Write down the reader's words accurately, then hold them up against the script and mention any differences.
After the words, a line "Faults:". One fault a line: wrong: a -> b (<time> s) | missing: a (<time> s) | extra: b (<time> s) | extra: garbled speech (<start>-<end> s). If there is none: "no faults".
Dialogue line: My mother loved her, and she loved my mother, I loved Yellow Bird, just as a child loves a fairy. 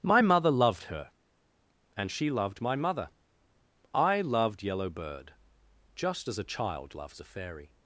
My mother loved her, and she loved my mother, I loved Yellow Bird, just as a child loves a fairy.
Faults:
no faults